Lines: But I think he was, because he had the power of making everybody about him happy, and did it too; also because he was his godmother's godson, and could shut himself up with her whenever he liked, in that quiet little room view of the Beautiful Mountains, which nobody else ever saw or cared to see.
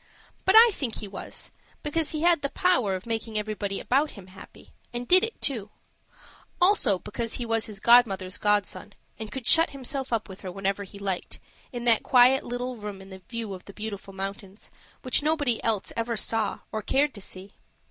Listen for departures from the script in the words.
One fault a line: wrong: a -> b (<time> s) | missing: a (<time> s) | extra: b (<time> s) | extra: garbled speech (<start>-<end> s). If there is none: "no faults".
extra: in (13.0 s)